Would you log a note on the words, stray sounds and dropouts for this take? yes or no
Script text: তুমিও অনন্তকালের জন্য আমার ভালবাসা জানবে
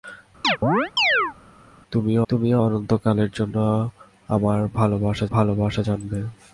yes